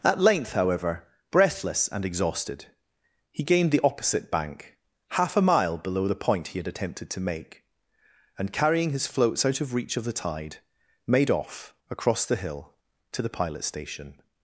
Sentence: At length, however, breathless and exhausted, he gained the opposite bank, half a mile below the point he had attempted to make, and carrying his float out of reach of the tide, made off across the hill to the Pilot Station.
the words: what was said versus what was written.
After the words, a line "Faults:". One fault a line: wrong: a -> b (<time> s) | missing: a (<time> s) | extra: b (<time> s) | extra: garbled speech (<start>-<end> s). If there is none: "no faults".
At length, however, breathless and exhausted, he gained the opposite bank, half a mile below the point he had attempted to make, and carrying his floats out of reach of the tide, made off across the hill to the Pilot Station.
Faults:
wrong: float -> floats (9.1 s)